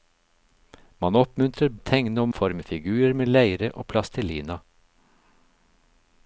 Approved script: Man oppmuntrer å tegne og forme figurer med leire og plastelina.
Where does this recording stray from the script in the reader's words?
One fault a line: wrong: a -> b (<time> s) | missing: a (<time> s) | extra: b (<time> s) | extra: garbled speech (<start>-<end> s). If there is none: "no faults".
no faults